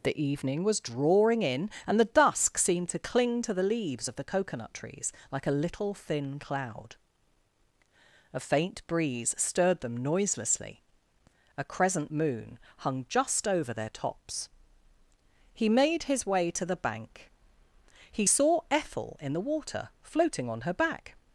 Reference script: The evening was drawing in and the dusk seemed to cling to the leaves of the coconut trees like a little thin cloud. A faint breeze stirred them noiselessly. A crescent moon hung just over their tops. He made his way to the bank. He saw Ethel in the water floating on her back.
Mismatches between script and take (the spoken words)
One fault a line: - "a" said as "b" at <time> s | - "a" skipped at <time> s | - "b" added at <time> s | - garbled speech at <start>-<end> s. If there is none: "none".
none